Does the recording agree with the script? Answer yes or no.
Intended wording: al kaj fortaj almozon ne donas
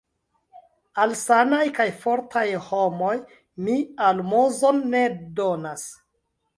no